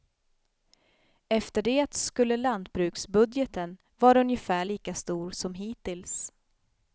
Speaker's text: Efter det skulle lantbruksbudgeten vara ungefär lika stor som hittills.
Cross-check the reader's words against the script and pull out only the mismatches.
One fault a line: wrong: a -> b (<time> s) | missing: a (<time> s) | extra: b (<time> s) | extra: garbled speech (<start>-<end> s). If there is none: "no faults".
no faults